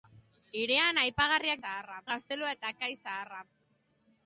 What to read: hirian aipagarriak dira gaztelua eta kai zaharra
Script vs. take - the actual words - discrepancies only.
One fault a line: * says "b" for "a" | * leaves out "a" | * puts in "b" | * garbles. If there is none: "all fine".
* says "zaharra" for "dira"